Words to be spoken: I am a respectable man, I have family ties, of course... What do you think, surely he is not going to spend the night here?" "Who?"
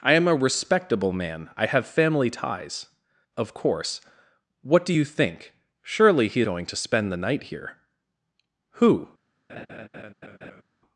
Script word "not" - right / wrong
wrong